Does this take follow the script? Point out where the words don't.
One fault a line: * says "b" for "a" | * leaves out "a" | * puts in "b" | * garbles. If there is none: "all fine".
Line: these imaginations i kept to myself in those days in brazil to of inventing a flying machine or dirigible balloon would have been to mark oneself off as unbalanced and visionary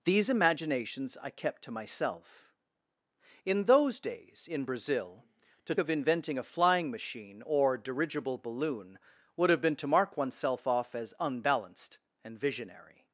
all fine